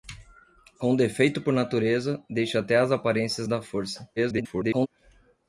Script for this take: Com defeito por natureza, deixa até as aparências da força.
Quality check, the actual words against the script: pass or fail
fail